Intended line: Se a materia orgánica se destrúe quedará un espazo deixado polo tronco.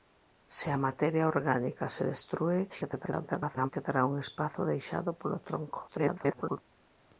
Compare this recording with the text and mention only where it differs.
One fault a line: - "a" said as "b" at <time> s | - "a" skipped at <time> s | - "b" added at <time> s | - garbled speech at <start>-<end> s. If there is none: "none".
- garbled speech at 2.7-3.7 s
- garbled speech at 5.9-6.6 s